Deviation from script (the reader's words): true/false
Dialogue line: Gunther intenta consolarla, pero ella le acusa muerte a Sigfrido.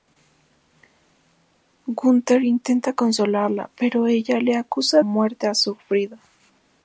false